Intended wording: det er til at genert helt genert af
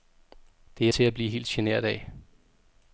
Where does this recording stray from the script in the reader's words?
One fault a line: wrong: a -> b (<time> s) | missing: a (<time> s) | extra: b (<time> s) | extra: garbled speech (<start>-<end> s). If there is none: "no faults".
wrong: genert -> blive (1.1 s)